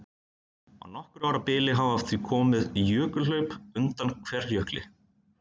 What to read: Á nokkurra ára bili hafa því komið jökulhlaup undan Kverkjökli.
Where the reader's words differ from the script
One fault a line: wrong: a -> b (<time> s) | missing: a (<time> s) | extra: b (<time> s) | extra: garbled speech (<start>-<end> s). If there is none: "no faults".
no faults